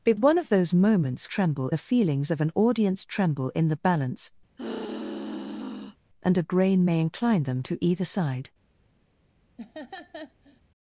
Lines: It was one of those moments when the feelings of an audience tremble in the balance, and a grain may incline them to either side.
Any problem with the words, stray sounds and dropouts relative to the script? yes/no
yes